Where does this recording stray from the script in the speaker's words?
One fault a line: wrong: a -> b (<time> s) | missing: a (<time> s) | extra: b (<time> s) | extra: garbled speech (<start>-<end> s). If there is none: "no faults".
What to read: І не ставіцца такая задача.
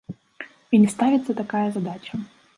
no faults